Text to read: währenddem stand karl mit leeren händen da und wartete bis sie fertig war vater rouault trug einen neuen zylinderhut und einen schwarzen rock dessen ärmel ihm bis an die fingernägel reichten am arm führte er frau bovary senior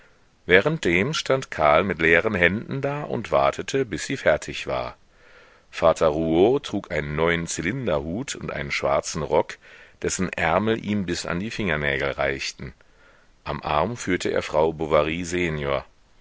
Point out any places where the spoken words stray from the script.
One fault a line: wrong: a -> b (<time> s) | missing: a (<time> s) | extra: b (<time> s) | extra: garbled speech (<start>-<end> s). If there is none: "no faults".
no faults